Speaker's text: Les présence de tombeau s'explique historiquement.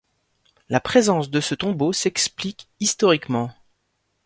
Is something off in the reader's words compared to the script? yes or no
yes